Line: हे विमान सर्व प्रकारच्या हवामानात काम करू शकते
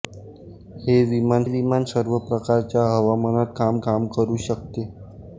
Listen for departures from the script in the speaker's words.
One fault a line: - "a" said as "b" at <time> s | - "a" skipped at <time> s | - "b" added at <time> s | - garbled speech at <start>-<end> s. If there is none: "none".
- "विमान" added at 1.5 s
- "काम" added at 3.8 s